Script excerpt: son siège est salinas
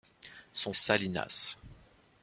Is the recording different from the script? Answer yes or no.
yes